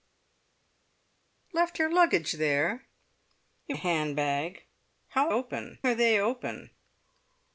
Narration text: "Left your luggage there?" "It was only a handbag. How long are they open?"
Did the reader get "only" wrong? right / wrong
wrong